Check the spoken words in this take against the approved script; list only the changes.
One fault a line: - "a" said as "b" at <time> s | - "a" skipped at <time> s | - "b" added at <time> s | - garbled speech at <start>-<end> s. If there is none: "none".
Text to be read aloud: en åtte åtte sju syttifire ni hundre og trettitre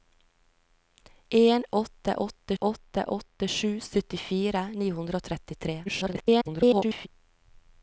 - "åtte åtte" added at 2.6 s
- garbled speech at 5.9-7.1 s